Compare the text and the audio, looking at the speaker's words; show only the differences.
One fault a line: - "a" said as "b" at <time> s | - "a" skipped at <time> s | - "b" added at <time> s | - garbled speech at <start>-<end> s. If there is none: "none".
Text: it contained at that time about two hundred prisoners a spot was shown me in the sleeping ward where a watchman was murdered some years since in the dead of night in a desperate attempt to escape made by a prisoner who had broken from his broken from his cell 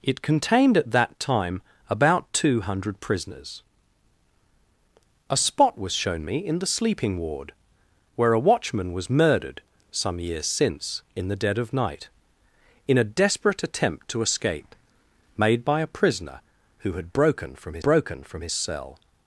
none